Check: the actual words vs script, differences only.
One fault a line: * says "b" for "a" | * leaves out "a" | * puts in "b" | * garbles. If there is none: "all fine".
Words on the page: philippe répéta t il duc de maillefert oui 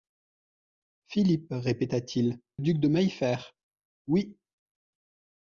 all fine